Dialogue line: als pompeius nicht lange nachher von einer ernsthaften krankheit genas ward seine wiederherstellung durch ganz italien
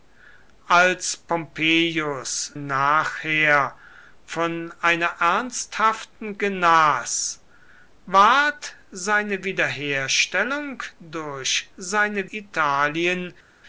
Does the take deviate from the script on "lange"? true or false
true